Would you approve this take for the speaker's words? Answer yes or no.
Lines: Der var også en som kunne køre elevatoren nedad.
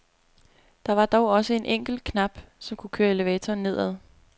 no